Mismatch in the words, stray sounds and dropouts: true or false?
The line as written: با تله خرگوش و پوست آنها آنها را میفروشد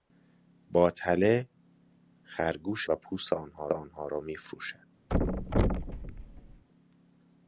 true